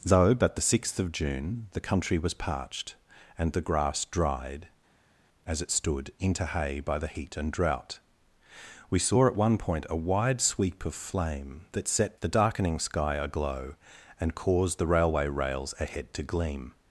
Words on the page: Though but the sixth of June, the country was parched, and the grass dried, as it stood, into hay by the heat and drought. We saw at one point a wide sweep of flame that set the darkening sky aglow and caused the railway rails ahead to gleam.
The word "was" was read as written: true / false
true